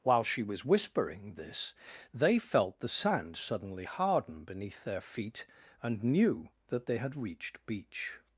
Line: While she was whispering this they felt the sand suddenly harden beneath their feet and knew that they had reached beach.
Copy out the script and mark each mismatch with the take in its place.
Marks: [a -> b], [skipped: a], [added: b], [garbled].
While she was whispering this they felt the sand suddenly harden beneath their feet and knew that they had reached beach.